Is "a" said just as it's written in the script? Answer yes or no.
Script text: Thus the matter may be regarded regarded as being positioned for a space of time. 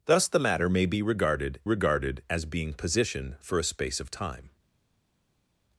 yes